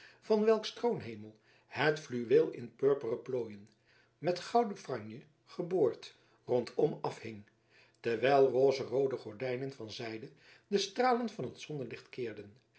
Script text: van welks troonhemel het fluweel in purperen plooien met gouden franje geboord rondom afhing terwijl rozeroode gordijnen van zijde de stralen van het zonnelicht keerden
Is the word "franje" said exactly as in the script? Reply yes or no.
yes